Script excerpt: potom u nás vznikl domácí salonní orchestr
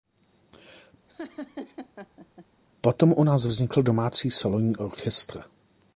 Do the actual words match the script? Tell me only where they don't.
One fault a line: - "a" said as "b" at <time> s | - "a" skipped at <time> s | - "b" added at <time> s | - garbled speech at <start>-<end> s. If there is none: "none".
none